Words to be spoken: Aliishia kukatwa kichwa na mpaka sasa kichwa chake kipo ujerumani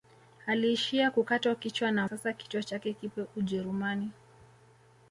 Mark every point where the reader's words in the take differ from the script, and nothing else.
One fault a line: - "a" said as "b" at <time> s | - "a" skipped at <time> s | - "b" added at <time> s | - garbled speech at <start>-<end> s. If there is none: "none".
- "mpaka" skipped at 2.1 s